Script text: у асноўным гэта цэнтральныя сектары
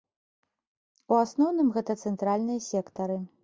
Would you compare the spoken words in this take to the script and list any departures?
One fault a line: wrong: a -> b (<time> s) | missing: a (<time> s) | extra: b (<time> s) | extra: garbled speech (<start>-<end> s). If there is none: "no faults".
no faults